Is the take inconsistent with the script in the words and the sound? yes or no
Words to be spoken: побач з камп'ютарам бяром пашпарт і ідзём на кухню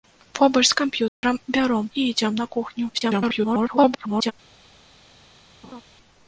yes